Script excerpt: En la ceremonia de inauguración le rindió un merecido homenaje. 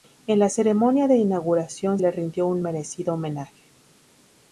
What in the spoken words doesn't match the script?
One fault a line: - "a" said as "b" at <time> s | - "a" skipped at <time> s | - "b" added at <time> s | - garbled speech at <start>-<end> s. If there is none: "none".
none